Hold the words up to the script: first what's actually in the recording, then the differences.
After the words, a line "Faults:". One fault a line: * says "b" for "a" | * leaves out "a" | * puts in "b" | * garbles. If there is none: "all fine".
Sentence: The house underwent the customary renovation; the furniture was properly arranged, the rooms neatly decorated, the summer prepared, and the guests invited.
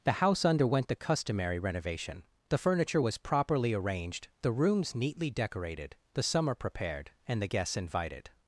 The house underwent the customary renovation; the furniture was properly arranged, the rooms neatly decorated, the summer prepared, and the guests invited.
Faults:
all fine